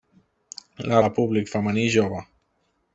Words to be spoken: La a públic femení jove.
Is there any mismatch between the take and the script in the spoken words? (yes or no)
no